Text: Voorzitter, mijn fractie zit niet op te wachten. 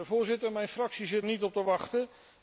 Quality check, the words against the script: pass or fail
pass